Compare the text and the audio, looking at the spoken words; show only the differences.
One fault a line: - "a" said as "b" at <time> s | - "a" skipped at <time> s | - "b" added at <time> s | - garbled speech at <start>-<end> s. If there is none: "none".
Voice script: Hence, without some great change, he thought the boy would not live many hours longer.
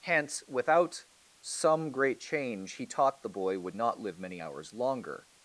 - "thought" said as "taught" at 2.9 s